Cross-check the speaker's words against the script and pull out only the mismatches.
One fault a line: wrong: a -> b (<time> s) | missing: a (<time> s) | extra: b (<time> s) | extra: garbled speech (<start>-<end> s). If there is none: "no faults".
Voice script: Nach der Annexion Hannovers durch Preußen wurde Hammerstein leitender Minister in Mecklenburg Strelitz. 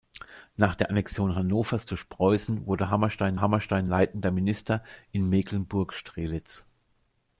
extra: Hammerstein (3.4 s)